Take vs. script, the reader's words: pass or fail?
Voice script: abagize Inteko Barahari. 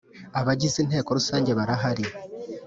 fail